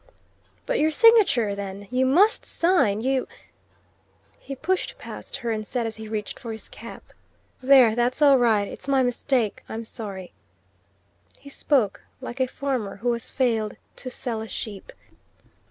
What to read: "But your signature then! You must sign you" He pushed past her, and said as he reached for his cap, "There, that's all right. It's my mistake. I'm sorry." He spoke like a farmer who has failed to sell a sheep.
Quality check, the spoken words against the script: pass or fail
pass